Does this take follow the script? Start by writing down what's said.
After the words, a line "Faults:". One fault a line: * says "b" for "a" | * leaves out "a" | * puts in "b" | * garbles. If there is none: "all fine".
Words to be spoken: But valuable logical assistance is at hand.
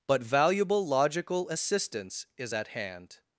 But valuable logical assistance is at hand.
Faults:
all fine